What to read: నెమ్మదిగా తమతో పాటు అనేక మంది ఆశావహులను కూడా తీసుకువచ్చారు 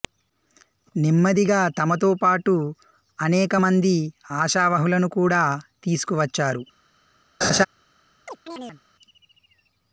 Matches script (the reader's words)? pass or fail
pass